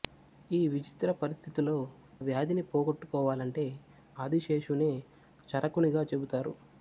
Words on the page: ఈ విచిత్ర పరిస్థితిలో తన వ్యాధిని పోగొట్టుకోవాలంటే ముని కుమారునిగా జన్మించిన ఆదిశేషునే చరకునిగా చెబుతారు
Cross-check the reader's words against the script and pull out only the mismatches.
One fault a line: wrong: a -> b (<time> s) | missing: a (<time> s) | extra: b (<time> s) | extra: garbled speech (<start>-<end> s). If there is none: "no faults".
missing: తన (1.8 s)
missing: ముని కుమారునిగా జన్మించిన (3.7 s)